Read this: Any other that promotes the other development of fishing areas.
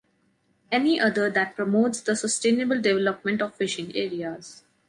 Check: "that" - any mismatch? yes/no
no